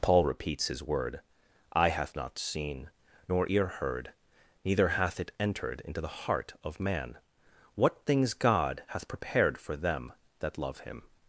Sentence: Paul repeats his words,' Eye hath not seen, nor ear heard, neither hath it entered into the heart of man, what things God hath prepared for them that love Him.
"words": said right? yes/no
no